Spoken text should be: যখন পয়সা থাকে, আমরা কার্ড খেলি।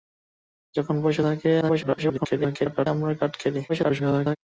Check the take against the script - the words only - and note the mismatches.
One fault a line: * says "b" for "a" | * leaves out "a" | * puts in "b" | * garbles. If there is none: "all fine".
* garbles
* garbles